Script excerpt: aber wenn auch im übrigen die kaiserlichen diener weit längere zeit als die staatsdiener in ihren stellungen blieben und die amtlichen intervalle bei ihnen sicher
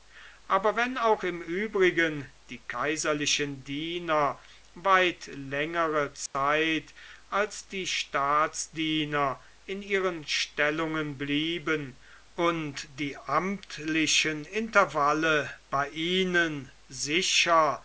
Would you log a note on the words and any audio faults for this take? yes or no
yes